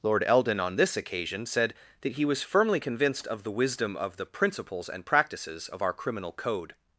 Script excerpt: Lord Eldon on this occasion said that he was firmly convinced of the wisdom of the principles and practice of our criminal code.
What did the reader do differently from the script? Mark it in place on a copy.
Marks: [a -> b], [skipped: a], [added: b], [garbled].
Lord Eldon on this occasion said that he was firmly convinced of the wisdom of the principles and [practice -> practices] of our criminal code.